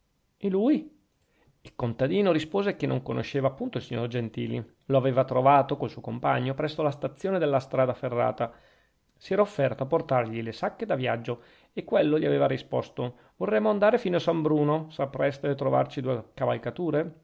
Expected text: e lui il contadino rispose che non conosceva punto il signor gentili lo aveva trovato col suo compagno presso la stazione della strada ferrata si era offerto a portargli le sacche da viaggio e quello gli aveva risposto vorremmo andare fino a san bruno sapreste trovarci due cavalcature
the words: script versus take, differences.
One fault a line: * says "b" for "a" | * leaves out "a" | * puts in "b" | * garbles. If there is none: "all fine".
all fine